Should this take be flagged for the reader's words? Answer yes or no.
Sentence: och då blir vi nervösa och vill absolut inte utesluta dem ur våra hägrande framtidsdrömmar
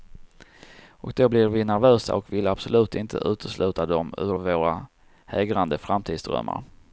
no